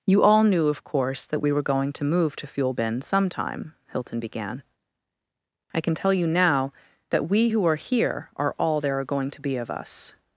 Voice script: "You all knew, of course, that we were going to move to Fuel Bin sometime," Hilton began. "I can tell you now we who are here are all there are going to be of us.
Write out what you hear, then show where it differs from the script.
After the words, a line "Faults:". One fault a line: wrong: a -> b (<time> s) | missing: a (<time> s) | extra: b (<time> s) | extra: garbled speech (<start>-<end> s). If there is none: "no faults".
"You all knew, of course, that we were going to move to Fuel Bin sometime," Hilton began. "I can tell you now that we who are here are all there are going to be of us.
Faults:
extra: that (7.1 s)